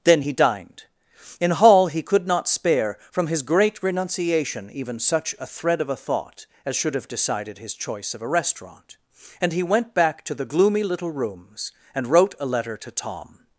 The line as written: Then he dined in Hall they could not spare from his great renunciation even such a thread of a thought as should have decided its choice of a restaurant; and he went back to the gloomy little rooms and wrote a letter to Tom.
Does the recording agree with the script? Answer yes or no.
no